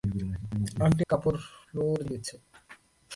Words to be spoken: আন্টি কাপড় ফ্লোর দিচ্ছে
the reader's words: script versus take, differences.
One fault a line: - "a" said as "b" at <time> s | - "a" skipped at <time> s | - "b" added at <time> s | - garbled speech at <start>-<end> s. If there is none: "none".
none